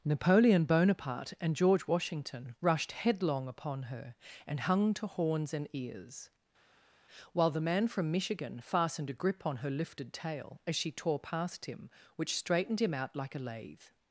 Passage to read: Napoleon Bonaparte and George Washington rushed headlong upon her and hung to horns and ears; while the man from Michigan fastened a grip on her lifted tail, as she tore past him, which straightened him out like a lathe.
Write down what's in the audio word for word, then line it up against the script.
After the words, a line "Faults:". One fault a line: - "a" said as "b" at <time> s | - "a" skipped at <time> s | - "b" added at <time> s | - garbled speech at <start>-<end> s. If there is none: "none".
Napoleon Bonaparte and George Washington rushed headlong upon her and hung to horns and ears; while the man from Michigan fastened a grip on her lifted tail, as she tore past him, which straightened him out like a lathe.
Faults:
none